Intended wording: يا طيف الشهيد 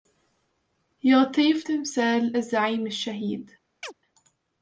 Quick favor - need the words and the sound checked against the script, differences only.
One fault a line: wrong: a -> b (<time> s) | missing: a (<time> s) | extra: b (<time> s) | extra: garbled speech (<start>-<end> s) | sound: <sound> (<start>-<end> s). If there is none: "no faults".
extra: تمثال الزعيم (1.6 s)
sound: chirp (3.8-3.9 s)